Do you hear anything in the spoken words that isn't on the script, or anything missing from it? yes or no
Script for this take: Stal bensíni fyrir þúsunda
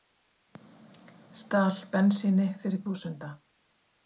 no